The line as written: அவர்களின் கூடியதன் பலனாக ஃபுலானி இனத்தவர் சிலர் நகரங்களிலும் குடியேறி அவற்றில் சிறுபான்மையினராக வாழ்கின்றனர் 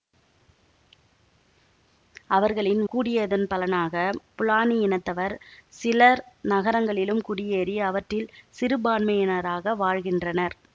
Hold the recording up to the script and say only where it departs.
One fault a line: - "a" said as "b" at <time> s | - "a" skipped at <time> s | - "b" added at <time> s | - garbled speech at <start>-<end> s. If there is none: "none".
none